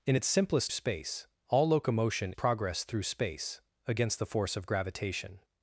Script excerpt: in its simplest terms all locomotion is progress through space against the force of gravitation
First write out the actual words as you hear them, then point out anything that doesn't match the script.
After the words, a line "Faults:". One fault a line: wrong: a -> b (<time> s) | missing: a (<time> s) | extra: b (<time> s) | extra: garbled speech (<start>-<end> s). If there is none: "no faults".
in its simplest space all locomotion progress through space against the force of gravitation
Faults:
wrong: terms -> space (0.7 s)
missing: is (2.3 s)